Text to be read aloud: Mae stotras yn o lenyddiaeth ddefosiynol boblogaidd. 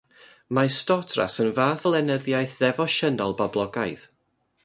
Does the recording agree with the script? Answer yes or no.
no